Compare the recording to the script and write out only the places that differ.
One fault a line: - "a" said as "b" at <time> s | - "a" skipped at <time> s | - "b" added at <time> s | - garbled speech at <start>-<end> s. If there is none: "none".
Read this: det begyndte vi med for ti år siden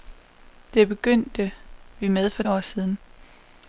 - "ti" skipped at 2.4 s